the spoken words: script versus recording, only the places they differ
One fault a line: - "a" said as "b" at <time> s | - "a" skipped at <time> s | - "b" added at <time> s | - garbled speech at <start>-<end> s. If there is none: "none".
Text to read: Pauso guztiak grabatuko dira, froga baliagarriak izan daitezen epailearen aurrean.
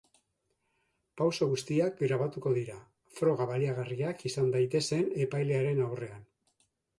none